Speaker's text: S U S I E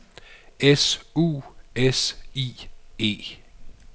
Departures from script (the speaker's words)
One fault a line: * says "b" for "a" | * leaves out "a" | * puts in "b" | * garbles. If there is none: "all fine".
all fine